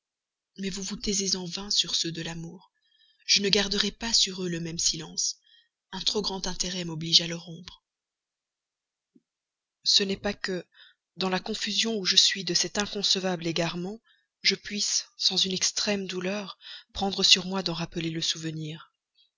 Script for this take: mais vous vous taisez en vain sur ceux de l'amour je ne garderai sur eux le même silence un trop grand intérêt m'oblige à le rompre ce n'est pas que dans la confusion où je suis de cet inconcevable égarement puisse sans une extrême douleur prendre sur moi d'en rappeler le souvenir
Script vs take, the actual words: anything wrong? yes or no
yes